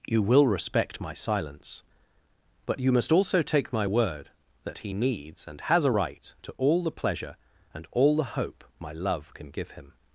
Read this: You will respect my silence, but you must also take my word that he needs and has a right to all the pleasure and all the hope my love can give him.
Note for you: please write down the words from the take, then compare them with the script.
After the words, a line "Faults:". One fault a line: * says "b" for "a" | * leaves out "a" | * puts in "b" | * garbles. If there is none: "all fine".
You will respect my silence, but you must also take my word that he needs and has a right to all the pleasure and all the hope my love can give him.
Faults:
all fine